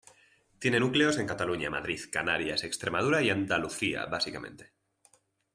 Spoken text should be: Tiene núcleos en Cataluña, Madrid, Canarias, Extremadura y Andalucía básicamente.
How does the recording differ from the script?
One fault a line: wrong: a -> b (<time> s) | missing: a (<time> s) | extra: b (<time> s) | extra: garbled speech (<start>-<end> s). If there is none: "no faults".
no faults